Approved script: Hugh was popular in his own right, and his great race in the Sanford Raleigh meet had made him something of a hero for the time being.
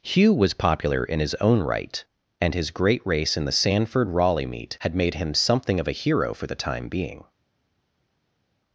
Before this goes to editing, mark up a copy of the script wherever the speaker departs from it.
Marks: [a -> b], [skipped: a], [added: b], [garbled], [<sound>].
Hugh was popular in his own right, and his great race in the Sanford Raleigh meet had made him something of a hero for the time being.